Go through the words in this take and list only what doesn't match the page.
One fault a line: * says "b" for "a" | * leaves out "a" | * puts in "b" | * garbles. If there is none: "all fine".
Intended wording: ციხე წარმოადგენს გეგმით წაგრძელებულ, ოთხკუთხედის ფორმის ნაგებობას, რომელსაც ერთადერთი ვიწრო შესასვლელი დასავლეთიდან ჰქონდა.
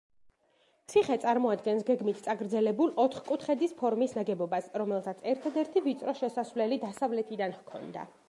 all fine